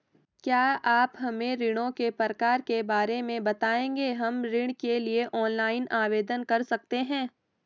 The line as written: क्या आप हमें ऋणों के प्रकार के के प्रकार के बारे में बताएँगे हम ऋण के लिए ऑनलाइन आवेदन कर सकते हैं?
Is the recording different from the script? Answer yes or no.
yes